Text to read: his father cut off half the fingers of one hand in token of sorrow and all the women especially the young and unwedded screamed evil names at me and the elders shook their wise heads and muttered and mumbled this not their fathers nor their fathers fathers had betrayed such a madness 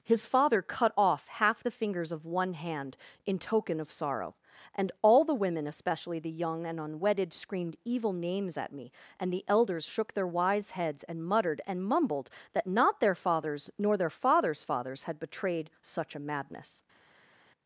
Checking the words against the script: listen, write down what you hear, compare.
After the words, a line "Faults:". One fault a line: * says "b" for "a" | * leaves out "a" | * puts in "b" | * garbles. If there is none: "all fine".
his father cut off half the fingers of one hand in token of sorrow and all the women especially the young and unwedded screamed evil names at me and the elders shook their wise heads and muttered and mumbled that not their fathers nor their fathers fathers had betrayed such a madness
Faults:
* says "that" for "this"